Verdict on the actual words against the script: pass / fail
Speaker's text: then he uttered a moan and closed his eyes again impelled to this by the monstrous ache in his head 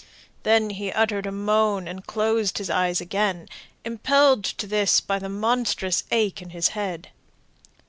pass